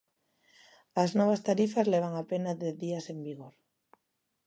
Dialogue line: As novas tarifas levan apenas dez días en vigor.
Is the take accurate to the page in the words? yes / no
yes